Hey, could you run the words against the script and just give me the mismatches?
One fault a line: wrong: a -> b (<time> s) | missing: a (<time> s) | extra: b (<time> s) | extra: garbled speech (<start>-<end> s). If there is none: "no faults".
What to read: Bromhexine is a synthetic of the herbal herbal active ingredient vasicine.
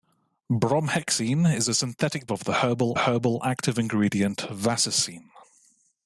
no faults